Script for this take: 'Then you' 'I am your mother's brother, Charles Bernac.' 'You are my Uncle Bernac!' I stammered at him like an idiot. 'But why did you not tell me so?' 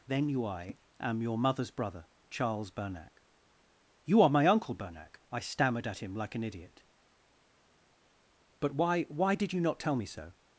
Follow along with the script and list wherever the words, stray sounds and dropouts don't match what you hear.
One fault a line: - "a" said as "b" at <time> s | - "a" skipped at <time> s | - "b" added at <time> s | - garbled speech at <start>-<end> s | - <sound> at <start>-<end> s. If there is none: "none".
- "why" added at 9.0 s